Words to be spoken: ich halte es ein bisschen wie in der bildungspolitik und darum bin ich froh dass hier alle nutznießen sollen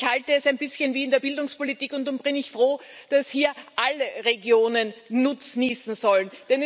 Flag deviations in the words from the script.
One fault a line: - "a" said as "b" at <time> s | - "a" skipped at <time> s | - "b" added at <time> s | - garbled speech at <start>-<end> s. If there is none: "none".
- "regionen" added at 4.3 s